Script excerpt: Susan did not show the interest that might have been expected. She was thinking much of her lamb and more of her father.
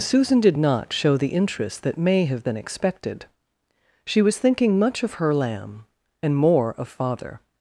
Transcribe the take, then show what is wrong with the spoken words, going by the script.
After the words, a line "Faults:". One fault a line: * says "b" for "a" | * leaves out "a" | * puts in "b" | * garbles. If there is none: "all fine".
Susan did not show the interest that may have been expected. She was thinking much of her lamb and more of father.
Faults:
* says "may" for "might"
* leaves out "her"